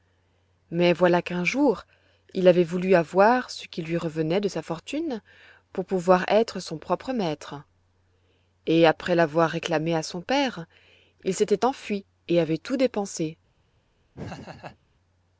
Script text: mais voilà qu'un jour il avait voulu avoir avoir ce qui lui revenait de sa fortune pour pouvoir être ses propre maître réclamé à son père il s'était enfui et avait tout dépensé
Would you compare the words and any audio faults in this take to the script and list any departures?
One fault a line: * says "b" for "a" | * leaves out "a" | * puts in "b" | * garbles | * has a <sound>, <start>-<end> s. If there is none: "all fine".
* leaves out "avoir"
* says "son" for "ses"
* puts in "et après l'avoir"
* has a laugh, 14.1-14.8 s